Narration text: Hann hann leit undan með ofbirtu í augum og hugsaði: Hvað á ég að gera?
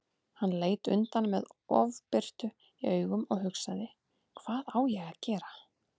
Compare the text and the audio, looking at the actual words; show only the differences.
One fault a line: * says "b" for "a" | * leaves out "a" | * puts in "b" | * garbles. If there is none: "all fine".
* leaves out "hann"